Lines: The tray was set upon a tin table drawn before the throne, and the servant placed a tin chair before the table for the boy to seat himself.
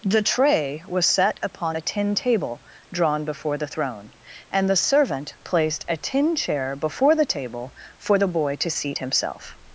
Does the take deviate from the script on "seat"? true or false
false